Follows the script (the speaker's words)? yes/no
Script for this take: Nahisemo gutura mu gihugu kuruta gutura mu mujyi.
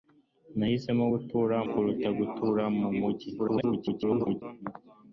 no